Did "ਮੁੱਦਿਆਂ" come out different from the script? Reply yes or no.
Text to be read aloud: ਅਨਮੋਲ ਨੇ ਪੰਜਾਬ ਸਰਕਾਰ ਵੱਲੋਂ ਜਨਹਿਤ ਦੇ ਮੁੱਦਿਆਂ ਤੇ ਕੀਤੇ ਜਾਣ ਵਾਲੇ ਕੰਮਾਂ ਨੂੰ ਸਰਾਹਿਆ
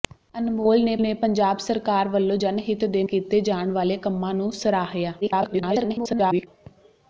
yes